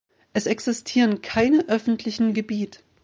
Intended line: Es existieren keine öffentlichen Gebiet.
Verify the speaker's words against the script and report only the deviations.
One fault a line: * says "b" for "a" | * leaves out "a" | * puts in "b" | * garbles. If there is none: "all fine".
all fine